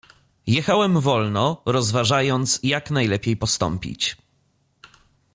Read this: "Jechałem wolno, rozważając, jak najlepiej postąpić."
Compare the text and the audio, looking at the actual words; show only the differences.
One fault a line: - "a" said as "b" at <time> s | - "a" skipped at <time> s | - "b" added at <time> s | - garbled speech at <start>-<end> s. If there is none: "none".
none